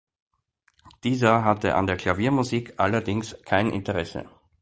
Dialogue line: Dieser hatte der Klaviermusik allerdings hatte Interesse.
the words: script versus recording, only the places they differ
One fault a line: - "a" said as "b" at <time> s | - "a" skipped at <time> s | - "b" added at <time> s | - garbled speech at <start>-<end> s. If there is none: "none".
- "an" added at 1.8 s
- "hatte" said as "kein" at 3.4 s